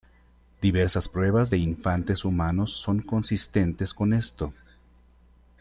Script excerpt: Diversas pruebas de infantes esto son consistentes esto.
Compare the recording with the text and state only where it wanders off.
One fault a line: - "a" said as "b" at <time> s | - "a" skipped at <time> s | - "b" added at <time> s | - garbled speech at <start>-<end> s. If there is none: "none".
- "esto" said as "humanos" at 2.2 s
- "con" added at 3.9 s